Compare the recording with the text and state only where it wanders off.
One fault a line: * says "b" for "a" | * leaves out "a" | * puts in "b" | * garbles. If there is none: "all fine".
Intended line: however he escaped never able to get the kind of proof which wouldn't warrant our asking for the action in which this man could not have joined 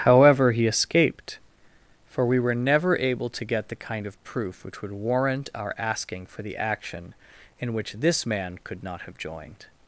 * puts in "for we were"
* says "would" for "wouldn't"